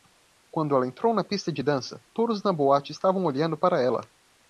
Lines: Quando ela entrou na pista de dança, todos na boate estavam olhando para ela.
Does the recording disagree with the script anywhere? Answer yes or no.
no